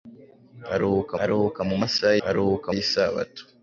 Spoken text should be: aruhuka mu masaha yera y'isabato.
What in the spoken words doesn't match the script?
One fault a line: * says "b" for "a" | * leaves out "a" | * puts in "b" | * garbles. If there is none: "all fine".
* puts in "aruhuka"
* says "aruhuka" for "yera"